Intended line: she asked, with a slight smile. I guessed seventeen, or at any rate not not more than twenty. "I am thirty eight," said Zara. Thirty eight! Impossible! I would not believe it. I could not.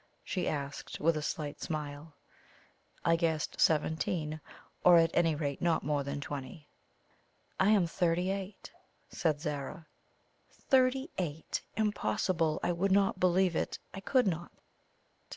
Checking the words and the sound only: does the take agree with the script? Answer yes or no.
no